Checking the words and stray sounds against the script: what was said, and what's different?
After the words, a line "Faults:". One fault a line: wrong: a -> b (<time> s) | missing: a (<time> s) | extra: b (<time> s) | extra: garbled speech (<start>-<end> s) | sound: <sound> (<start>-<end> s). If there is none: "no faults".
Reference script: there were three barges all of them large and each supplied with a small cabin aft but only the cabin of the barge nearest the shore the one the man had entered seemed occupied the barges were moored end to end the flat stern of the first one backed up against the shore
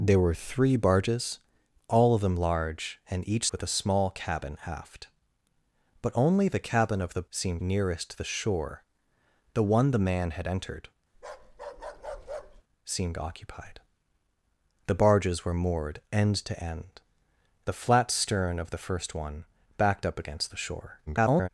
there were three barges all of them large and each with a small cabin aft but only the cabin of the seemed nearest the shore the one the man had entered seemed occupied the barges were moored end to end the flat stern of the first one backed up against the shore [garbled]
Faults:
missing: supplied (3.5 s)
wrong: barge -> seemed (7.3 s)
sound: bark (11.1-12.6 s)
extra: garbled speech (21.1-21.5 s)